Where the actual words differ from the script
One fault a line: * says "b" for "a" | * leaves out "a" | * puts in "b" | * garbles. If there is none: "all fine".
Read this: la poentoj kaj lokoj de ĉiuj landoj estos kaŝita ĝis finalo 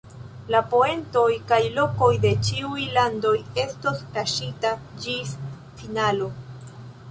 all fine